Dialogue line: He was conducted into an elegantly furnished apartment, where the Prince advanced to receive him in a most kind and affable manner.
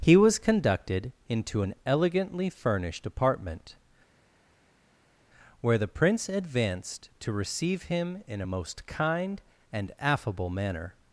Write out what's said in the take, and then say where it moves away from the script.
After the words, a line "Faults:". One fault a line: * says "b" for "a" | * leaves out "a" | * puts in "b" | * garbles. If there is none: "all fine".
He was conducted into an elegantly furnished apartment, where the Prince advanced to receive him in a most kind and affable manner.
Faults:
all fine